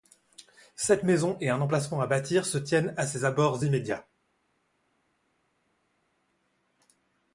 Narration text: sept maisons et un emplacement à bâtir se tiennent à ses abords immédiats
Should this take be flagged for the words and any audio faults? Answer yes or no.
no